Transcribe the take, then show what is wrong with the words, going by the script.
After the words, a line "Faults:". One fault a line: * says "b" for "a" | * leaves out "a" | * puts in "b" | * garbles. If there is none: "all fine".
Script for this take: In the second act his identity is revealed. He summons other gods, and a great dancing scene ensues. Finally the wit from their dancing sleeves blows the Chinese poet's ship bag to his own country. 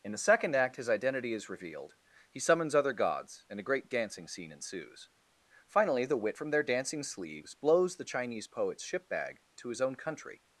In the second act his identity is revealed. He summons other gods, and a great dancing scene ensues. Finally the wit from their dancing sleeves blows the Chinese poet's ship bag to his own country.
Faults:
all fine